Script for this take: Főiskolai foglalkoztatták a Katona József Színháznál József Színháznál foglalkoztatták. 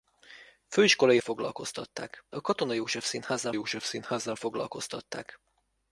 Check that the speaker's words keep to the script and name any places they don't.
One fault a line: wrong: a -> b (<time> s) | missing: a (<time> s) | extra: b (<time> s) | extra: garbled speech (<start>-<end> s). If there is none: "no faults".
no faults